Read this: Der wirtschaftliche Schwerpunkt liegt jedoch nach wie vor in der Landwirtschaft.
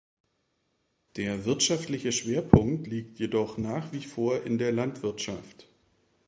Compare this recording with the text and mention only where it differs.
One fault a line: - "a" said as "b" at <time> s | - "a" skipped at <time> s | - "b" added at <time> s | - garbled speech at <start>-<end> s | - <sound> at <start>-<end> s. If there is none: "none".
none